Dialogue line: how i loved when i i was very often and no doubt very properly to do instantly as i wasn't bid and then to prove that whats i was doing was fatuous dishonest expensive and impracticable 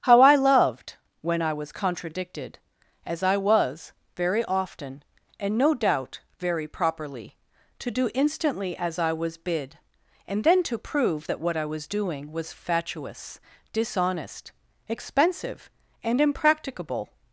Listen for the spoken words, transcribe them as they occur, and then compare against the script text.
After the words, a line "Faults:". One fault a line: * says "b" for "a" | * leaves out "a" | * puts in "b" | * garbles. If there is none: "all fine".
how i loved when i was contradicted as i was very often and no doubt very properly to do instantly as i was bid and then to prove that what i was doing was fatuous dishonest expensive and impracticable
Faults:
* puts in "was contradicted as"
* says "was" for "wasn't"
* says "what" for "whats"